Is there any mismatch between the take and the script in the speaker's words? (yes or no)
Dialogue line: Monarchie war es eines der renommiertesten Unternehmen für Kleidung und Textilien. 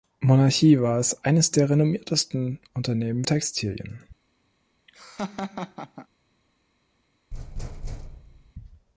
yes